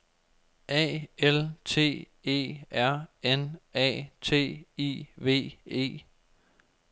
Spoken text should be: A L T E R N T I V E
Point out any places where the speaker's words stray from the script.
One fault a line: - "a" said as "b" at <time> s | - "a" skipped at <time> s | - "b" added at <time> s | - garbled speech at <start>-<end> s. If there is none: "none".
- "A" added at 3.7 s